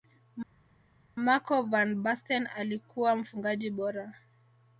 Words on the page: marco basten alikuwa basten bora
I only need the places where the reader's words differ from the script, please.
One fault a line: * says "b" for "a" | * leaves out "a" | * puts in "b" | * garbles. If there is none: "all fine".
* puts in "van"
* says "mfungaji" for "basten"